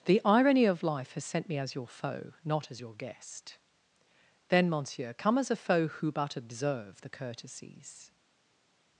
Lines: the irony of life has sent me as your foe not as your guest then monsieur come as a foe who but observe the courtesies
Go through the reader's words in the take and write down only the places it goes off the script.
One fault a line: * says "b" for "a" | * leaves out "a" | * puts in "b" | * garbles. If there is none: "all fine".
all fine